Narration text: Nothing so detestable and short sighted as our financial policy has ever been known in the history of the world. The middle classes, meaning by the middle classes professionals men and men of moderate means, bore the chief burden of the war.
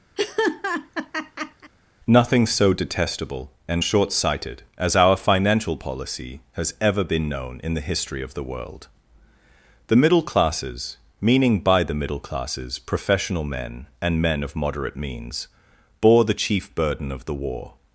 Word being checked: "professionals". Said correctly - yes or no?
no